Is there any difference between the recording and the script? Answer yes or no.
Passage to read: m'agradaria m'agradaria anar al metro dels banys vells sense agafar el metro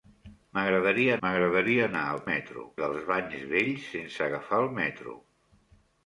no